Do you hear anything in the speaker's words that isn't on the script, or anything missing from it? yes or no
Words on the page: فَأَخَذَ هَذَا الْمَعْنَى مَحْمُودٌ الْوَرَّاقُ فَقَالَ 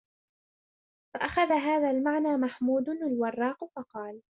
no